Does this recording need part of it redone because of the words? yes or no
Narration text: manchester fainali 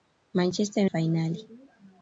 no